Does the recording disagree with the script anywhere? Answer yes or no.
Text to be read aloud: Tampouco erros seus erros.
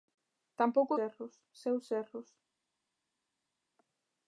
no